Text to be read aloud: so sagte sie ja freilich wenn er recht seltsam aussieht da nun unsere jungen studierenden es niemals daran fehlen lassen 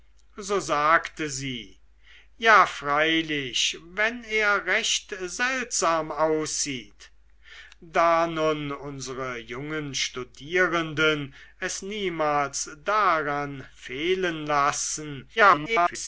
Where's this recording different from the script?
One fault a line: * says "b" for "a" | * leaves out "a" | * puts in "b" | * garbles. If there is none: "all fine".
* garbles